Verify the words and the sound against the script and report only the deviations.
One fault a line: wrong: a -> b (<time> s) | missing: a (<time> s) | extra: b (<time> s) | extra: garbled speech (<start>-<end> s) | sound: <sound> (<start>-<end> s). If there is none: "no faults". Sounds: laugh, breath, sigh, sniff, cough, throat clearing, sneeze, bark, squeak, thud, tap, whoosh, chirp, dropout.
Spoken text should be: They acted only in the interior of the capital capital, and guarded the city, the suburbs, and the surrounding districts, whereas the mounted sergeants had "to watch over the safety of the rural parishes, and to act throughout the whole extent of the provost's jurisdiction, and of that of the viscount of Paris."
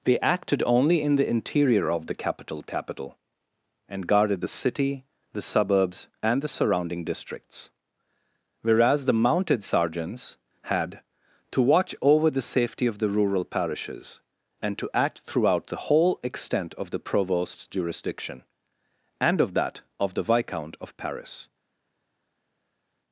no faults